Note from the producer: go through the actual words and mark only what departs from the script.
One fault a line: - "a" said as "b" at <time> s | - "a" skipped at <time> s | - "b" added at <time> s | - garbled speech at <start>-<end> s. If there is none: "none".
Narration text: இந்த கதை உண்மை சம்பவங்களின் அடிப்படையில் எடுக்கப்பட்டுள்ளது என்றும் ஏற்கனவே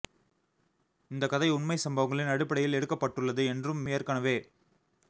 none